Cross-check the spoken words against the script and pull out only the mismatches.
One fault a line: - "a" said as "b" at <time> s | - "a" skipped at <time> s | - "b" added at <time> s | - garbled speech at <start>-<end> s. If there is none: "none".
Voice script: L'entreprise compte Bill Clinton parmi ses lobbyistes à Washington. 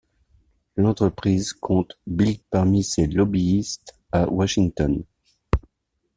- "Clinton" skipped at 2.4 s